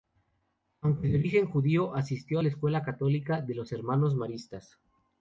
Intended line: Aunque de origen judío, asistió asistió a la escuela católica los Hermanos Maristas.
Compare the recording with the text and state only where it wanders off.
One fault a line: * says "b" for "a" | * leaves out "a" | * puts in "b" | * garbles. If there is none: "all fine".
* leaves out "asistió"
* puts in "de"